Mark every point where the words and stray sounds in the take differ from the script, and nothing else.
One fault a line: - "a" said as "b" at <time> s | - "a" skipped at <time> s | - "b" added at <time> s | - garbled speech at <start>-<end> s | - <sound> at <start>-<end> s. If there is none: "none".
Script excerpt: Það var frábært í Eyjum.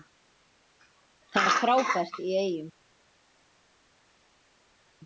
none